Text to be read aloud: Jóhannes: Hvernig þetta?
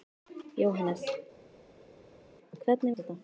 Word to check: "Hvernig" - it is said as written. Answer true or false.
true